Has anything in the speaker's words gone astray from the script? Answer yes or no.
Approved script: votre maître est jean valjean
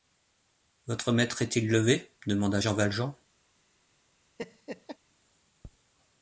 yes